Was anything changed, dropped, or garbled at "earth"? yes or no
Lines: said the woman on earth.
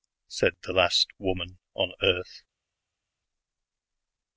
no